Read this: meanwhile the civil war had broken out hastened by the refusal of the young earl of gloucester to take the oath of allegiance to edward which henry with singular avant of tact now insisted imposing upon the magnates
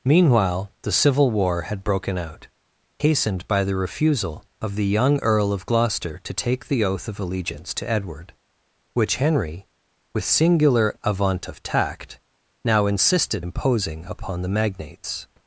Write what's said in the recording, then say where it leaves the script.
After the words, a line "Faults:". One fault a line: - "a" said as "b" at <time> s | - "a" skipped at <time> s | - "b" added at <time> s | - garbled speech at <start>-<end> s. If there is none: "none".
meanwhile the civil war had broken out hastened by the refusal of the young earl of gloucester to take the oath of allegiance to edward which henry with singular avant of tact now insisted imposing upon the magnates
Faults:
none